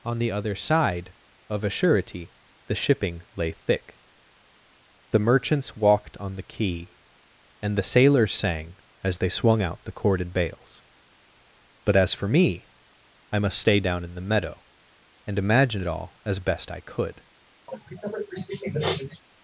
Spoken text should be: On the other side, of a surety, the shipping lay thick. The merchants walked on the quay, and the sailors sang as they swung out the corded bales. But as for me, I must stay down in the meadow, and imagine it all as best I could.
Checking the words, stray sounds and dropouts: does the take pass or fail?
fail